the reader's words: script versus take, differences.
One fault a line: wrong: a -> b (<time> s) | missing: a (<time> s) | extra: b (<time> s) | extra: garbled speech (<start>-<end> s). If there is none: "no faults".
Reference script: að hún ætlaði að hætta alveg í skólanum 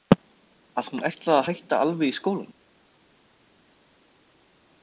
no faults